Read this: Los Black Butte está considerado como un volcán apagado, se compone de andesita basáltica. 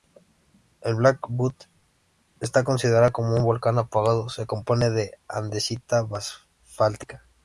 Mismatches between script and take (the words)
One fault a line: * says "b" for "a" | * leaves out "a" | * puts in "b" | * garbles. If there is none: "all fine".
* says "El" for "Los"